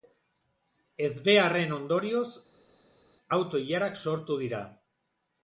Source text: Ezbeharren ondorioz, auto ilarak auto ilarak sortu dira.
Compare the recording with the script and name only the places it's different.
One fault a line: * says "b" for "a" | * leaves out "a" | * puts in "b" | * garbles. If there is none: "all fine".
* leaves out "auto ilarak"